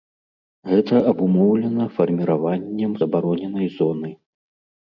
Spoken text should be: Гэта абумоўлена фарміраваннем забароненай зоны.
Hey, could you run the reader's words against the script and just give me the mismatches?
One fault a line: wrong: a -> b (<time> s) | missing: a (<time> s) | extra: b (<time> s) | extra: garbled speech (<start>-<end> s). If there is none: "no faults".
no faults